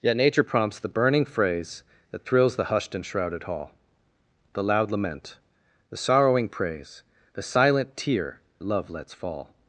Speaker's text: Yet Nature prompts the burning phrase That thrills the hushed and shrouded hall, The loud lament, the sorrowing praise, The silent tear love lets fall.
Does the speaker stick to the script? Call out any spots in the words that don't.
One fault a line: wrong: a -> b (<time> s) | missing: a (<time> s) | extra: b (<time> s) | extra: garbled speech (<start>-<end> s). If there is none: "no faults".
no faults